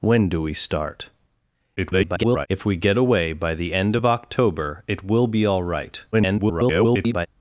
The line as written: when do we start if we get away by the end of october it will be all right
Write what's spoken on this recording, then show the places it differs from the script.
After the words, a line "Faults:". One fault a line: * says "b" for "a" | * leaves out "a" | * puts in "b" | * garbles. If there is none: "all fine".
when do we start [garbled] if we get away by the end of october it will be all right [garbled]
Faults:
* garbles
* garbles